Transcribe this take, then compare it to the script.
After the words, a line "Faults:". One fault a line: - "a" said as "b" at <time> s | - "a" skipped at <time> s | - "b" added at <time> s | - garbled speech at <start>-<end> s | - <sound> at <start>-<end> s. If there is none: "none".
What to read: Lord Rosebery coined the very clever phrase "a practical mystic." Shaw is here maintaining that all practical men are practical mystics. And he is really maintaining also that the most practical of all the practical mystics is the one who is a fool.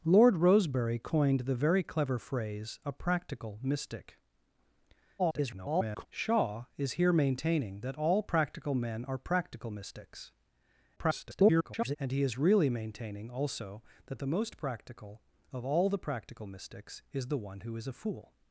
Lord Rosebery coined the very clever phrase "a practical mystic." [garbled] Shaw is here maintaining that all practical men are practical mystics. [garbled] And he is really maintaining also that the most practical of all the practical mystics is the one who is a fool.
Faults:
- garbled speech at 5.2-6.1 s
- garbled speech at 11.0-12.0 s